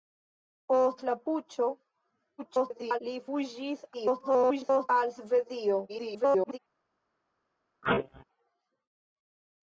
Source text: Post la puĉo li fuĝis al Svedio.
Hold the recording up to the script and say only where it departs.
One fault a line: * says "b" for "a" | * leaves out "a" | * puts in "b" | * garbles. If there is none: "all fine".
* garbles
* garbles
* garbles